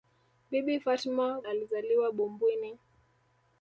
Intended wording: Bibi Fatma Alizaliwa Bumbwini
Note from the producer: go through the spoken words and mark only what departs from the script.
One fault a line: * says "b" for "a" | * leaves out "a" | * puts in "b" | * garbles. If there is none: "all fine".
all fine